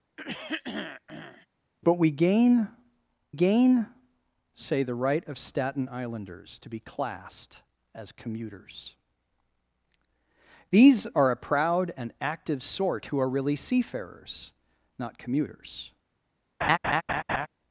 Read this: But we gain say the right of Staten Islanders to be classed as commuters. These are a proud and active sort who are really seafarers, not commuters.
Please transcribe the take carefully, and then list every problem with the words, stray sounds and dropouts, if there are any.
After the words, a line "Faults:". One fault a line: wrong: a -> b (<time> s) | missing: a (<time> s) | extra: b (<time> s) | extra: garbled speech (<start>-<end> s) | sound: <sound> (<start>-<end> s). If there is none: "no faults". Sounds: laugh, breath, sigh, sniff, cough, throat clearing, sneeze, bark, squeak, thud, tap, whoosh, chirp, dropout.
But we gain gain say the right of Staten Islanders to be classed as commuters. These are a proud and active sort who are really seafarers, not commuters.
Faults:
sound: throat clearing (0.2-1.5 s)
extra: gain (3.3 s)
sound: laugh (16.6-17.5 s)